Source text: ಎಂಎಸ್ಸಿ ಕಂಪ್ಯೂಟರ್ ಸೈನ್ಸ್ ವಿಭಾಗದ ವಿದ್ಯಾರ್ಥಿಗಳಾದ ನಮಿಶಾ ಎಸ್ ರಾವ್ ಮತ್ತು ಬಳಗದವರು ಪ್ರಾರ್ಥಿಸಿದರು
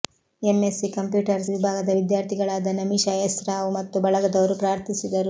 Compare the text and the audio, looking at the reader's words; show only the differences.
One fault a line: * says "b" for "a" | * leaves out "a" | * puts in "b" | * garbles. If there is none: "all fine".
* leaves out "ಸೈನ್ಸ್"